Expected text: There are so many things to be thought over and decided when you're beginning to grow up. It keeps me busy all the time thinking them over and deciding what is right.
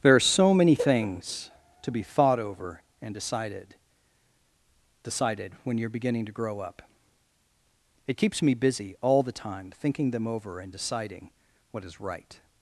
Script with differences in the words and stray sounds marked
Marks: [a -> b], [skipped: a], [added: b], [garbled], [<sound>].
There are so many things to be thought over and decided [added: decided] when you're beginning to grow up. It keeps me busy all the time thinking them over and deciding what is right.